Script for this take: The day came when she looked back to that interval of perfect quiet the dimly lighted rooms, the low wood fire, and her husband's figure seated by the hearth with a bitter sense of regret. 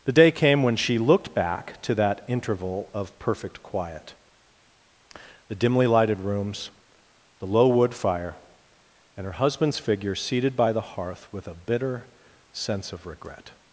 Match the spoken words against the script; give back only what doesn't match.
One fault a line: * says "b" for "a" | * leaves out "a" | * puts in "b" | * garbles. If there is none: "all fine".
all fine